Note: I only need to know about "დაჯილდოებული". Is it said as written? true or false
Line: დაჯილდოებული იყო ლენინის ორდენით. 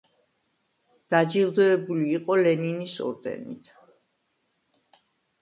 true